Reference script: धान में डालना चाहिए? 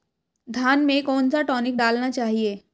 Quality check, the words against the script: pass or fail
fail